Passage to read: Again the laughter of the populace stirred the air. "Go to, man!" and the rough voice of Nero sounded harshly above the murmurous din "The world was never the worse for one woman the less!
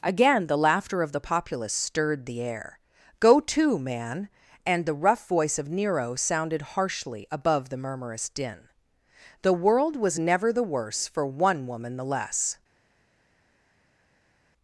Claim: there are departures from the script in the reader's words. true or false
false